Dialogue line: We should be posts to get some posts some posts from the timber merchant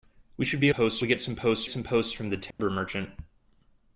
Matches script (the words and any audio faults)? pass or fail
fail